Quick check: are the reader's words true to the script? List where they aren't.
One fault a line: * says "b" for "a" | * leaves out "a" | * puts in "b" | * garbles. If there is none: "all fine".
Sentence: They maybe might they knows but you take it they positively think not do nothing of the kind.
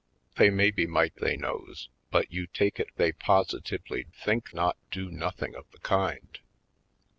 all fine